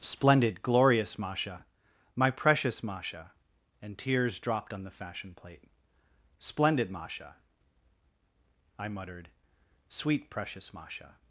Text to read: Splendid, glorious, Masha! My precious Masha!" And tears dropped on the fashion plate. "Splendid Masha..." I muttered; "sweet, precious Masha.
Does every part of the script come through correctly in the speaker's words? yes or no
yes